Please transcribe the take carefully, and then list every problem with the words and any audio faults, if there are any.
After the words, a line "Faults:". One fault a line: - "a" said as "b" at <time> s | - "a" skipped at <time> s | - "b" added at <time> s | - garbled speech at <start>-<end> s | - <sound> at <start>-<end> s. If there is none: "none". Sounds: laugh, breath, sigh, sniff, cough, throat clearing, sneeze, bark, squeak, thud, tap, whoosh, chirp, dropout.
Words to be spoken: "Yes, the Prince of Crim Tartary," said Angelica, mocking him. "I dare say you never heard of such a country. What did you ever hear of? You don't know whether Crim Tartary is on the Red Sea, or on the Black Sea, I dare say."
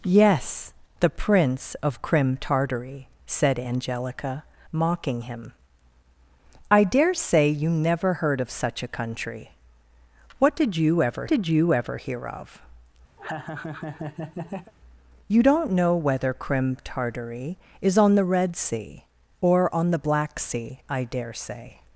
"Yes, the Prince of Crim Tartary," said Angelica, mocking him. "I dare say you never heard of such a country. What did you ever did you ever hear of? You don't know whether Crim Tartary is on the Red Sea, or on the Black Sea, I dare say."
Faults:
- "did you ever" added at 11.3 s
- laugh at 13.2-14.7 s